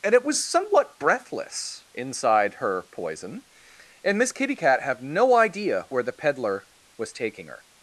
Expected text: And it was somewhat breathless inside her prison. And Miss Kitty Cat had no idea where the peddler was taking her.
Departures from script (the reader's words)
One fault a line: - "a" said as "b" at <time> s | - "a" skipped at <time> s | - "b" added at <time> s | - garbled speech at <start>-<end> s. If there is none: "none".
- "prison" said as "poison" at 2.9 s
- "had" said as "have" at 4.8 s